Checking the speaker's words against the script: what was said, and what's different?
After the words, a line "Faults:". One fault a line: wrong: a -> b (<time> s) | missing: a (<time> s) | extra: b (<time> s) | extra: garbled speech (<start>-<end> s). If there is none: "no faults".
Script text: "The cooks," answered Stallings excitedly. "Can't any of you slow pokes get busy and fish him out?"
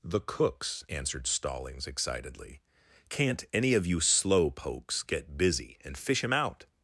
"The cooks," answered Stallings excitedly. "Can't any of you slow pokes get busy and fish him out?"
Faults:
no faults